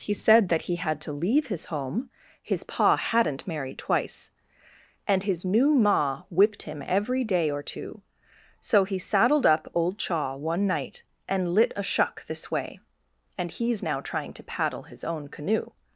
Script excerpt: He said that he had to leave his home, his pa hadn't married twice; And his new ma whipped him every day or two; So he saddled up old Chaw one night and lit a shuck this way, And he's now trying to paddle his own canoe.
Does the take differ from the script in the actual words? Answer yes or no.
no